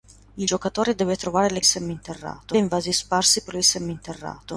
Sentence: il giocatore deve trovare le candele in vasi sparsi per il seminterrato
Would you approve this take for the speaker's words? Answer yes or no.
no